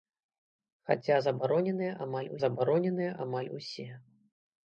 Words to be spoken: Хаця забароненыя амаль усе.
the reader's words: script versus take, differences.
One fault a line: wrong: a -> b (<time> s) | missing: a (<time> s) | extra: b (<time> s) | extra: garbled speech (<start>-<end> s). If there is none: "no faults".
extra: забароненыя амаль (2.4 s)